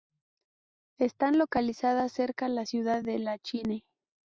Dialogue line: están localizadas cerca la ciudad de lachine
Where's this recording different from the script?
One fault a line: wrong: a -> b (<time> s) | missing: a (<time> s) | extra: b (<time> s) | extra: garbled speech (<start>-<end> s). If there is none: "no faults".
no faults